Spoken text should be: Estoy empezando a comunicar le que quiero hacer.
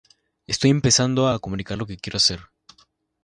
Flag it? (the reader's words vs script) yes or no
yes